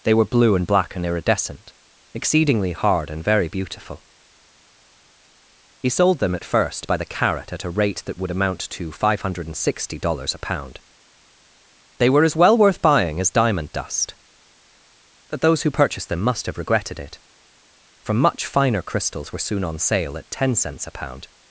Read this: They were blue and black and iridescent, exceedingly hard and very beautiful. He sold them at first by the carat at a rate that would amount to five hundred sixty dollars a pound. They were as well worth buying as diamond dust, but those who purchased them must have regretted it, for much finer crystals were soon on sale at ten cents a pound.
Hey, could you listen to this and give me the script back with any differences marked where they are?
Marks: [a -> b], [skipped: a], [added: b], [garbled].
They were blue and black and iridescent, exceedingly hard and very beautiful. He sold them at first by the carat at a rate that would amount to five hundred sixty dollars a pound. They were as well worth buying as diamond dust, but those who purchased them must have regretted it, for much finer crystals were soon on sale at ten cents a pound.